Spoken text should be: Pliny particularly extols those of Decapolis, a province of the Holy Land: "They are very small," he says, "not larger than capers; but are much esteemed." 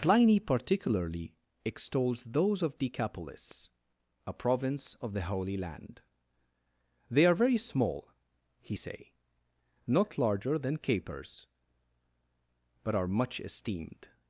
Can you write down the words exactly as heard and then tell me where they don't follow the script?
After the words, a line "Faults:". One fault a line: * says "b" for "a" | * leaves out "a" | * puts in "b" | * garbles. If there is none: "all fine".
Pliny particularly extols those of Decapolis, a province of the Holy Land: "They are very small," he say, "not larger than capers; but are much esteemed."
Faults:
* says "say" for "says"